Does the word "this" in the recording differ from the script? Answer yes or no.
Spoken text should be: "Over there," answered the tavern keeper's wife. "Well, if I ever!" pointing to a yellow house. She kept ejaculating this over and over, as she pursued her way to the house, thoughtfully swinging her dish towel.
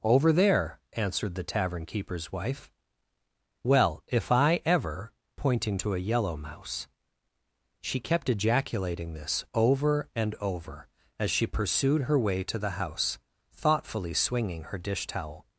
no